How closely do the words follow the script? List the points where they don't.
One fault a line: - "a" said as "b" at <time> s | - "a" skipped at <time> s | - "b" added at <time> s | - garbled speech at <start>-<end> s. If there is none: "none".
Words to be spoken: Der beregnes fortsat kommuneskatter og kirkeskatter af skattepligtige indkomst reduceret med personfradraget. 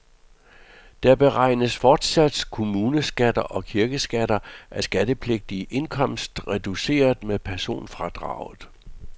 none